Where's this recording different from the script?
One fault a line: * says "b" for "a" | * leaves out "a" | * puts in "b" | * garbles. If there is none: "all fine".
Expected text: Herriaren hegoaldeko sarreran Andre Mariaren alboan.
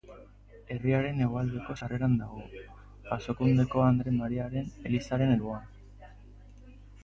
* puts in "dago Jasokundeko"
* puts in "elizaren"